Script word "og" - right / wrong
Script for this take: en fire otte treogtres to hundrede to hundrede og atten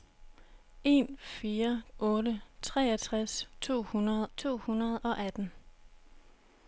right